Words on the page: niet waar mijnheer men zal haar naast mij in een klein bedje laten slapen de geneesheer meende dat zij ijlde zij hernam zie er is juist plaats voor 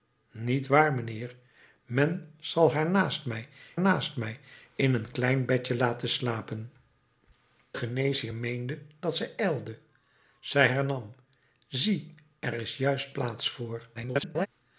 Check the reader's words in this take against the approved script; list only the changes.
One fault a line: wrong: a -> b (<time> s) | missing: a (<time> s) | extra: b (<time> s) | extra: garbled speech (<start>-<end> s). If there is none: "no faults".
extra: naast mij (3.8 s)
missing: de (6.7 s)
extra: garbled speech (13.9-14.5 s)